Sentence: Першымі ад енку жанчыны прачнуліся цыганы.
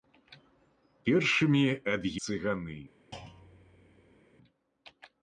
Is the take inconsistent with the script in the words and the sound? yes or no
yes